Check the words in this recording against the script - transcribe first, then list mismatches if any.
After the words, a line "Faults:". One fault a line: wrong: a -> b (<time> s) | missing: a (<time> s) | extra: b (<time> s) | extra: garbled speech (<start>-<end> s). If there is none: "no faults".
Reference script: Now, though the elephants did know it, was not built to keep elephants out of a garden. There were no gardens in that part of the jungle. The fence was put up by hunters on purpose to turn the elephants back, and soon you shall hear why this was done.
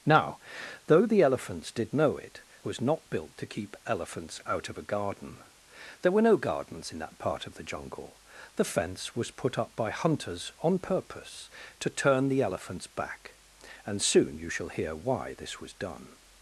Now, though the elephants did know it, was not built to keep elephants out of a garden. There were no gardens in that part of the jungle. The fence was put up by hunters on purpose to turn the elephants back, and soon you shall hear why this was done.
Faults:
no faults